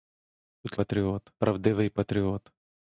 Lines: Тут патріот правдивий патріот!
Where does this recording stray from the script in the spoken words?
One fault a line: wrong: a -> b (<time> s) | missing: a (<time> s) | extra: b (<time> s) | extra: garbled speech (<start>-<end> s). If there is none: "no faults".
no faults